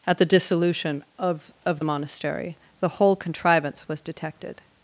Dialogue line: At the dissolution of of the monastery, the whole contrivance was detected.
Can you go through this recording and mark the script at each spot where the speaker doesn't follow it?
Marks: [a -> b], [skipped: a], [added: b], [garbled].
At the dissolution of of the monastery, the whole contrivance was detected.